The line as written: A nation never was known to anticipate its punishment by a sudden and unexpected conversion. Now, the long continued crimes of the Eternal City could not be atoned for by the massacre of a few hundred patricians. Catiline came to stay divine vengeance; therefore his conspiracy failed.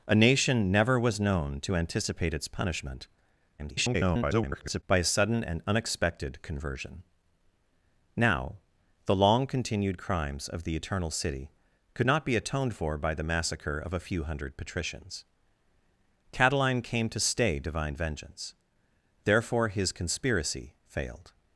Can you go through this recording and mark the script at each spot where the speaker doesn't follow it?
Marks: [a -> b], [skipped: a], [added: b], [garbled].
A nation never was known to anticipate its punishment [garbled] by a sudden and unexpected conversion. Now, the long continued crimes of the Eternal City could not be atoned for by the massacre of a few hundred patricians. Catiline came to stay divine vengeance; therefore his conspiracy failed.